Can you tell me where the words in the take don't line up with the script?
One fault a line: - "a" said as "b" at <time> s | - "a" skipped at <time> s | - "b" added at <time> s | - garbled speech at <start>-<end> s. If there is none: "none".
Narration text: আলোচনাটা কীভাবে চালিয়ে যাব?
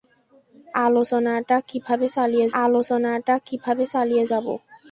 - "আলোচনাটা কীভাবে চালিয়ে" added at 2.6 s